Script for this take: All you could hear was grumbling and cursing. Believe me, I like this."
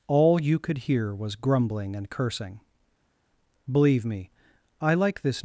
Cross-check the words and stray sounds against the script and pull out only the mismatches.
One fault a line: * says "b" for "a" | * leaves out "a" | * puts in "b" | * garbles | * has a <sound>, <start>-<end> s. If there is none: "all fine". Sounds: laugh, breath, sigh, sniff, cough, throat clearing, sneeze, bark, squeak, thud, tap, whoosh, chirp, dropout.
all fine